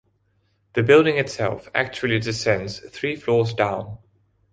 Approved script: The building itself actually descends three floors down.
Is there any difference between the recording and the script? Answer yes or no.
no